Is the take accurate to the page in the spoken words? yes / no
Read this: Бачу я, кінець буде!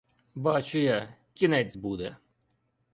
yes